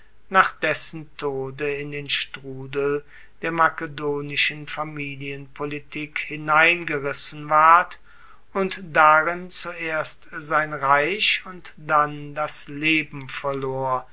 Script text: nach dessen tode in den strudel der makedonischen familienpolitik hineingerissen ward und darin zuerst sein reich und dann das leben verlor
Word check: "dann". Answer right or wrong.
right